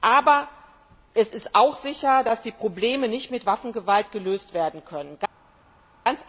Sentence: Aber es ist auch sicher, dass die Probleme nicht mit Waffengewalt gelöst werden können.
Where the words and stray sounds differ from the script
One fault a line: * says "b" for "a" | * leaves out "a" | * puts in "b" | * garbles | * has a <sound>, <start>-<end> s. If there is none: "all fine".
all fine